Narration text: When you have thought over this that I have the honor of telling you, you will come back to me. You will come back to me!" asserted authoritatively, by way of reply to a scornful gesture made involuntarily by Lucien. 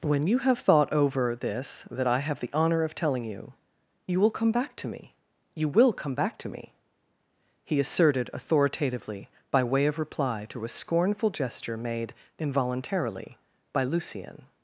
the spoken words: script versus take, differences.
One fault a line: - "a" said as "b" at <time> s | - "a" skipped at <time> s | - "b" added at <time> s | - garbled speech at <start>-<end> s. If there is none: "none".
- "he" added at 7.6 s